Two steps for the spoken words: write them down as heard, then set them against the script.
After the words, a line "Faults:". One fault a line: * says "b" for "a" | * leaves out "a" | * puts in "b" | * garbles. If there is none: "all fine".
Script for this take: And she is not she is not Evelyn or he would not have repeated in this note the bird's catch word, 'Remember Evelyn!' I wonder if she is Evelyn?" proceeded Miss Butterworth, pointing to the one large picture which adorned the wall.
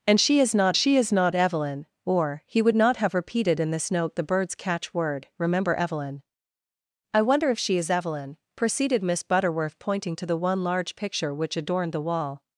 And she is not she is not Evelyn or he would not have repeated in this note the bird's catch word, 'Remember Evelyn!' I wonder if she is Evelyn?" proceeded Miss Butterworth, pointing to the one large picture which adorned the wall.
Faults:
all fine